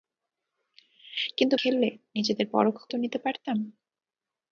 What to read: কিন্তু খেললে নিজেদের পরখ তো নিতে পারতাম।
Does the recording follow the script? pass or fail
pass